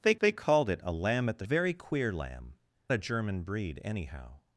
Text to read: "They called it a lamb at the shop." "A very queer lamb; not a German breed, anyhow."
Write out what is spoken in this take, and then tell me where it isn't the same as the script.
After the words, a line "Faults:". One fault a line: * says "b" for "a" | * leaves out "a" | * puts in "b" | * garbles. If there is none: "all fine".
"They they called it a lamb at the very queer lamb; a German breed, anyhow."
Faults:
* puts in "they"
* leaves out "shop A"
* leaves out "not"